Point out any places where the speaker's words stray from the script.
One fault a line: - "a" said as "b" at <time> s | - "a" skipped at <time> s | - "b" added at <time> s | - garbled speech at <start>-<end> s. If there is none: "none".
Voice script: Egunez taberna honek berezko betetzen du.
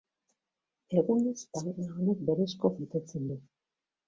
none